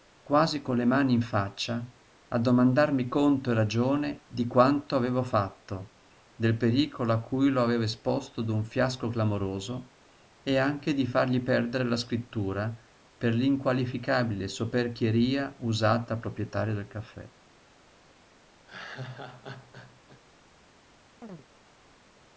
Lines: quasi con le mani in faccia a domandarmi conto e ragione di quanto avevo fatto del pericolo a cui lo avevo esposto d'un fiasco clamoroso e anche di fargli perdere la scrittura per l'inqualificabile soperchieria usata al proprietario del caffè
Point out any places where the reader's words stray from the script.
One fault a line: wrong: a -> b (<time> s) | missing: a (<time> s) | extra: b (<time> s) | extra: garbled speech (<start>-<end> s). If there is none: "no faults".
no faults